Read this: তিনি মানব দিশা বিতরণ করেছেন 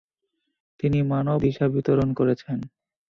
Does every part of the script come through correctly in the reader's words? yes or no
yes